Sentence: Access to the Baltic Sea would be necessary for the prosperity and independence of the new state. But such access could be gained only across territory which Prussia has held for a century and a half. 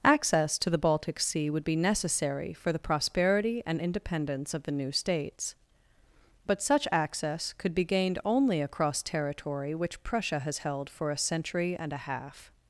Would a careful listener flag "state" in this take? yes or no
yes